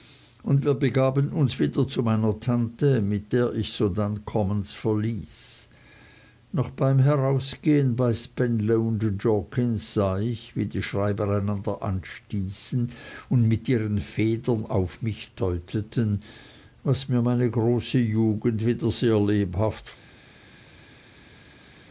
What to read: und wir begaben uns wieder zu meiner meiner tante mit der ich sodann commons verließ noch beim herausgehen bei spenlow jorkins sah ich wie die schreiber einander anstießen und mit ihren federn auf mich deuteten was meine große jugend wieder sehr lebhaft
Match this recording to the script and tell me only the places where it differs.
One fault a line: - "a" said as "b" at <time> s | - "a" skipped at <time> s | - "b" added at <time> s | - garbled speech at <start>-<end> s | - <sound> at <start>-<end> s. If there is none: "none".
- "meiner" skipped at 2.4 s
- "mir" added at 17.1 s